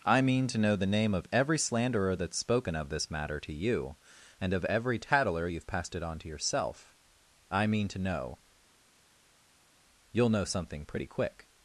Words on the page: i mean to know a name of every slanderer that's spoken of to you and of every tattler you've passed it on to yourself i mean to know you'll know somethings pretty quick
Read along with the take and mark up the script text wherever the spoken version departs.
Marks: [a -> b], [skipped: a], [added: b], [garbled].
i mean to know [a -> the] name of every slanderer that's spoken of [added: this matter] to you and of every tattler you've passed it on to yourself i mean to know you'll know [somethings -> something] pretty quick